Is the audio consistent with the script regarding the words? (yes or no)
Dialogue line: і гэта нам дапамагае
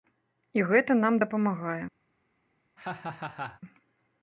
yes